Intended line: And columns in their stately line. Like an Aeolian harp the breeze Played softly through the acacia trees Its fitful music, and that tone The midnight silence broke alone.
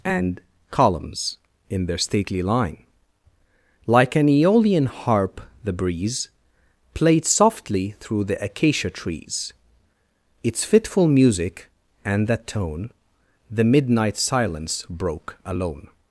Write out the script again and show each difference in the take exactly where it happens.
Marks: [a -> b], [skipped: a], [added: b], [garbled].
And columns in their stately line. Like an Aeolian harp the breeze Played softly through the acacia trees Its fitful music, and that tone The midnight silence broke alone.